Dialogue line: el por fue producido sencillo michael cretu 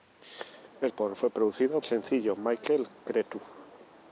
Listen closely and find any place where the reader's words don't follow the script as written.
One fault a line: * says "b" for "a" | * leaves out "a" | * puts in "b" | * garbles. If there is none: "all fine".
all fine